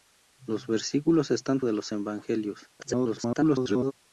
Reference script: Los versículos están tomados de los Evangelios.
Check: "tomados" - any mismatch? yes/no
yes